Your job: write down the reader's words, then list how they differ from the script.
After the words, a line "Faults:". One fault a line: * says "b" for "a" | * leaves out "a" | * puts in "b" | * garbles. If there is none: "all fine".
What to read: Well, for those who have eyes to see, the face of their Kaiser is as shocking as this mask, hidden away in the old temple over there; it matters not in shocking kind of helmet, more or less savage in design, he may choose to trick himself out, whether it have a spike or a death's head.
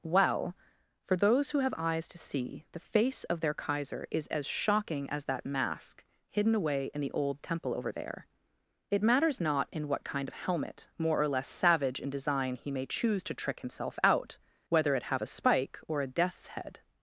Well, for those who have eyes to see, the face of their Kaiser is as shocking as that mask, hidden away in the old temple over there; it matters not in what kind of helmet, more or less savage in design, he may choose to trick himself out, whether it have a spike or a death's head.
Faults:
* says "that" for "this"
* says "what" for "shocking"